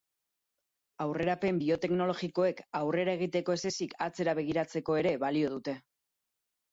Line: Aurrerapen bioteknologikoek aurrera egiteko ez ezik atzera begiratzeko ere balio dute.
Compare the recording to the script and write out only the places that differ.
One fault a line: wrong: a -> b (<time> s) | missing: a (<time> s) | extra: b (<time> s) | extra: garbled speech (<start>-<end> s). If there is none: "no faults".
no faults